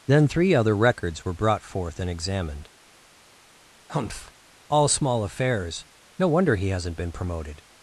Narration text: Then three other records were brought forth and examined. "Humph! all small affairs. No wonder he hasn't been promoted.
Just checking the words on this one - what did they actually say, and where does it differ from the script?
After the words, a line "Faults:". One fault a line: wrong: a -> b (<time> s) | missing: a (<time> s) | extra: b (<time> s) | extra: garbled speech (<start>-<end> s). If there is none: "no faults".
Then three other records were brought forth and examined. "Humph! all small affairs. No wonder he hasn't been promoted.
Faults:
no faults